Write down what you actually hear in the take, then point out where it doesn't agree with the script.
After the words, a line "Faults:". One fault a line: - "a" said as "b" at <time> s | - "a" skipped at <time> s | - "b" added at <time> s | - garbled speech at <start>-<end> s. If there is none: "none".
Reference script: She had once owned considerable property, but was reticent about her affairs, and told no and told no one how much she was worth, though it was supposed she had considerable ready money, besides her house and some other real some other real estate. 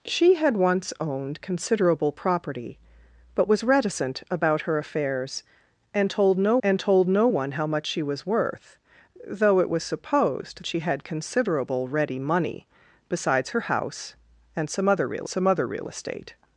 She had once owned considerable property, but was reticent about her affairs, and told no and told no one how much she was worth, though it was supposed she had considerable ready money, besides her house and some other real some other real estate.
Faults:
none